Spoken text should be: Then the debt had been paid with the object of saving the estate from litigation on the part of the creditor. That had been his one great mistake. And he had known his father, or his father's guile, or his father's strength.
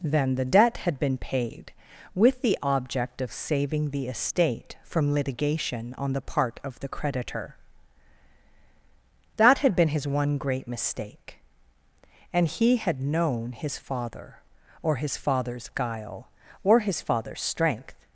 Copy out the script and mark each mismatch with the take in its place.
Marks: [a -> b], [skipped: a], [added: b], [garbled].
Then the debt had been paid with the object of saving the estate from litigation on the part of the creditor. That had been his one great mistake. And he had known his father, or his father's guile, or his father's strength.